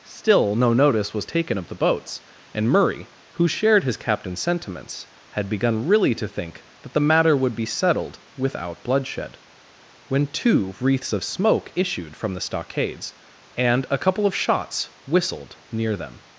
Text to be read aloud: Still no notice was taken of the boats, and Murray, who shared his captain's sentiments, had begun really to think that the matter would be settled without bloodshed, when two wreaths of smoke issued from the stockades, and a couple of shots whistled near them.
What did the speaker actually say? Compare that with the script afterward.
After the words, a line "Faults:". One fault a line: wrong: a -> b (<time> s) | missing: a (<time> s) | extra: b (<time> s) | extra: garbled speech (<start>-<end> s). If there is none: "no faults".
Still no notice was taken of the boats, and Murray, who shared his captain's sentiments, had begun really to think that the matter would be settled without bloodshed, when two wreaths of smoke issued from the stockades, and a couple of shots whistled near them.
Faults:
no faults